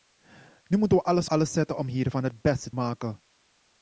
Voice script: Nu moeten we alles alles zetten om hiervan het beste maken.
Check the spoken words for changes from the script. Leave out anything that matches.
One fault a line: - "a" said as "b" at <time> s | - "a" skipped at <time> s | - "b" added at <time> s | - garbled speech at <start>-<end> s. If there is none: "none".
none